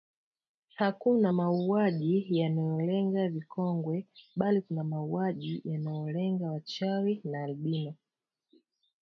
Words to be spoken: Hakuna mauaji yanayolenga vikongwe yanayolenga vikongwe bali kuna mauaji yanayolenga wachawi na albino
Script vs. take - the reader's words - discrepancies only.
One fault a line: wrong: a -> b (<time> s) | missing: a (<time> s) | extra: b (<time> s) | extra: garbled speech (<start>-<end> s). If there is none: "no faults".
missing: yanayolenga vikongwe (4.1 s)